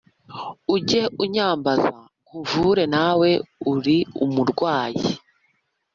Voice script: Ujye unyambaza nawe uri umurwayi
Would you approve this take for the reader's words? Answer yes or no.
no